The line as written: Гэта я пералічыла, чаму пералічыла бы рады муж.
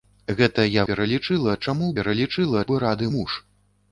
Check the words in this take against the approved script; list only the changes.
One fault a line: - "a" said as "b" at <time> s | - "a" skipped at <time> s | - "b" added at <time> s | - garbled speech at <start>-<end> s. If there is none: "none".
none